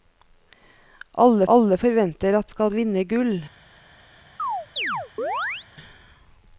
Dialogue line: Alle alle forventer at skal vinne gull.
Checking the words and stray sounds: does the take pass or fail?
fail